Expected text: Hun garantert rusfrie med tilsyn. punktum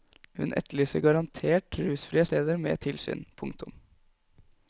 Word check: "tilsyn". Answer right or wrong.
right